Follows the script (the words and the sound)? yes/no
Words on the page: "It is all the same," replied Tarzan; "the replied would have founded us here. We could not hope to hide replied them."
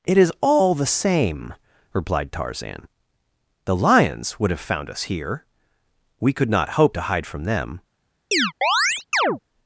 no